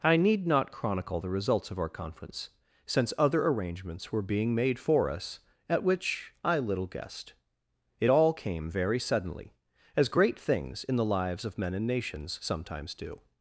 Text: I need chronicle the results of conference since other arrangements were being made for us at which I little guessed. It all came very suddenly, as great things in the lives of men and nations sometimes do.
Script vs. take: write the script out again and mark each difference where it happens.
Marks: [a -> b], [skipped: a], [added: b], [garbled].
I need [added: not] chronicle the results of [added: our] conference since other arrangements were being made for us at which I little guessed. It all came very suddenly, as great things in the lives of men and nations sometimes do.